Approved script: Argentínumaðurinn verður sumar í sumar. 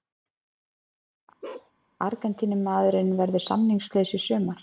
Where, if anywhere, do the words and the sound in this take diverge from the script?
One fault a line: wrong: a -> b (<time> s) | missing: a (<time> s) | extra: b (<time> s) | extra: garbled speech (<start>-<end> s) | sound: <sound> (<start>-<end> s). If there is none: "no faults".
sound: bark (1.4-1.7 s)
wrong: sumar -> samningslaus (3.4 s)